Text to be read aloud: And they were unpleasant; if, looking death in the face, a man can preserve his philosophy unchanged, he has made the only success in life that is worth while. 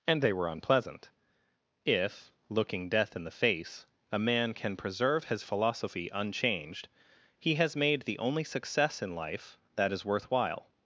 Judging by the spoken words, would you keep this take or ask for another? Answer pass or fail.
pass